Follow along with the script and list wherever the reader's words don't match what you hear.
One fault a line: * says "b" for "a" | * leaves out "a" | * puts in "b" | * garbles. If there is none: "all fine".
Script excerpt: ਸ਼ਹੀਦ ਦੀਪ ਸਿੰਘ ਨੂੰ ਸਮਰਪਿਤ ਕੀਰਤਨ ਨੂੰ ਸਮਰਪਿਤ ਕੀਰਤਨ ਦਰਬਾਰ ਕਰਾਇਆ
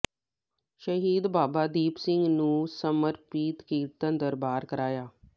* puts in "ਬਾਬਾ"
* leaves out "ਨੂੰ ਸਮਰਪਿਤ ਕੀਰਤਨ"